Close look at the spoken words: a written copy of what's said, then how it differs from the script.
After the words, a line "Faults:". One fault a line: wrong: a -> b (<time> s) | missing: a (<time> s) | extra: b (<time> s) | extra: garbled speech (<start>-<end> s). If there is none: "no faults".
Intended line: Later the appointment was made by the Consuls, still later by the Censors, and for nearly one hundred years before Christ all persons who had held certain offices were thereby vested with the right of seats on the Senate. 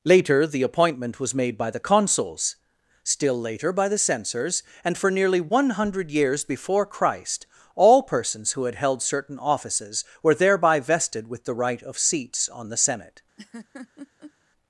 Later the appointment was made by the Consuls, still later by the Censors, and for nearly one hundred years before Christ all persons who had held certain offices were thereby vested with the right of seats on the Senate.
Faults:
no faults